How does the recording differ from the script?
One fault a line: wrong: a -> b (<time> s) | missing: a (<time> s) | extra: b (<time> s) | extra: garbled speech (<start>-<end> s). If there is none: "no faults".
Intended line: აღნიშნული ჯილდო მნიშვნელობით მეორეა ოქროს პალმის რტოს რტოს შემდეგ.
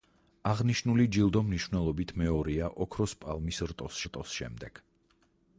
no faults